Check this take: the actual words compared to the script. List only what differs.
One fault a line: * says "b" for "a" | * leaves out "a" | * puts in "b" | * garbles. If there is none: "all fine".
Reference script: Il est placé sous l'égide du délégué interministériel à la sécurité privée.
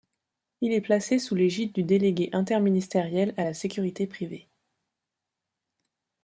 all fine